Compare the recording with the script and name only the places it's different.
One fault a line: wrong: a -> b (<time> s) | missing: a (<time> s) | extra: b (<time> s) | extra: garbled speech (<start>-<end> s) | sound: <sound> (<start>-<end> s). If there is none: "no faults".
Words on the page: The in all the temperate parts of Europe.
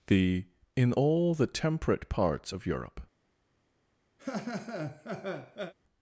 sound: laugh (4.2-5.7 s)